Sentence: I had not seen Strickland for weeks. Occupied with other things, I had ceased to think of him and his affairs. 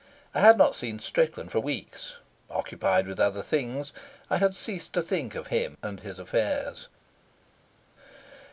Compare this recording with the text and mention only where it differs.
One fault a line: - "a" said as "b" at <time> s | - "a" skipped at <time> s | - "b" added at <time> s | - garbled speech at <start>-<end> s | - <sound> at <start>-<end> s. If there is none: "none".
none